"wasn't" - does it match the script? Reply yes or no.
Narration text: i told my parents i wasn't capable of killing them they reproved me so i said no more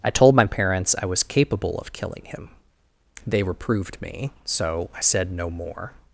no